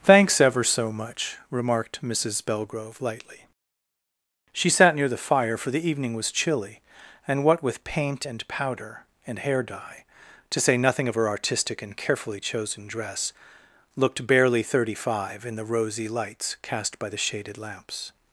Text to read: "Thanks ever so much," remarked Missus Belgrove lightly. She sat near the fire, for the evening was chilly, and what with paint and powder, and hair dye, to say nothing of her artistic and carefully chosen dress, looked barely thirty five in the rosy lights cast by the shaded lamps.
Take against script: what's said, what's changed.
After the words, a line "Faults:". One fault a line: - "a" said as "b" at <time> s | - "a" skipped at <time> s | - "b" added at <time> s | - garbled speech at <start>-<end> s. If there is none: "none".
"Thanks ever so much," remarked Missus Belgrove lightly. She sat near the fire, for the evening was chilly, and what with paint and powder, and hair dye, to say nothing of her artistic and carefully chosen dress, looked barely thirty five in the rosy lights cast by the shaded lamps.
Faults:
none